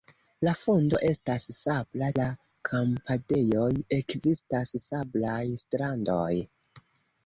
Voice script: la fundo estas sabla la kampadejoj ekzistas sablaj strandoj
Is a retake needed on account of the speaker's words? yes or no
no